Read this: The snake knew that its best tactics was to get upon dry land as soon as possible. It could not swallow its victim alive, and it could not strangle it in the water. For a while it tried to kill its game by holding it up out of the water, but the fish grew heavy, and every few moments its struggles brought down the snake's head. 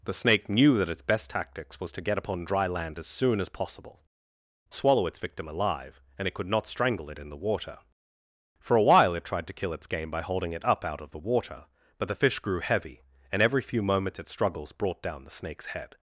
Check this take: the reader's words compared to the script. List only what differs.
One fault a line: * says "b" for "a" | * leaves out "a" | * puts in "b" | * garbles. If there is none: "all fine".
* leaves out "It could not"